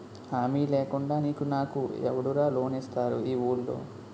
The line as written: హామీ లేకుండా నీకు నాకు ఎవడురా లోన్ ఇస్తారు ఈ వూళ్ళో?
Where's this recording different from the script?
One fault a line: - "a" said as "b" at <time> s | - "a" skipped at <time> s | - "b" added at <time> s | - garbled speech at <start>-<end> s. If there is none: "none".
none